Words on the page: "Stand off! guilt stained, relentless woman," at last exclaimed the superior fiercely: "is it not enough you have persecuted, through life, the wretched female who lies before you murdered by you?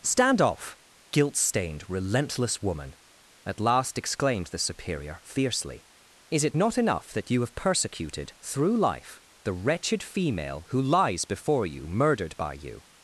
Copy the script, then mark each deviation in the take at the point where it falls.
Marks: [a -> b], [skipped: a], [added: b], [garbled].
"Stand off! guilt stained, relentless woman," at last exclaimed the superior fiercely: "is it not enough [added: that] you have persecuted, through life, the wretched female who lies before you murdered by you?